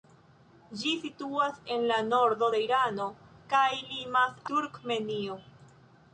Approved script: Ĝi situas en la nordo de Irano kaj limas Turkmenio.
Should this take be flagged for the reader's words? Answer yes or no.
no